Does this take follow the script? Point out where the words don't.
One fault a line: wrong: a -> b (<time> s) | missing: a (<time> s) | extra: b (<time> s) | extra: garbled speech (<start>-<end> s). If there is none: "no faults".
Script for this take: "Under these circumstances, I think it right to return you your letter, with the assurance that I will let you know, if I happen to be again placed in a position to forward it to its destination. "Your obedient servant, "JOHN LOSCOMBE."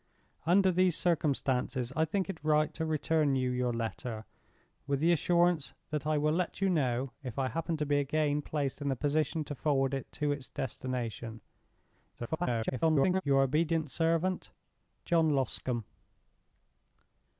extra: garbled speech (12.2-13.2 s)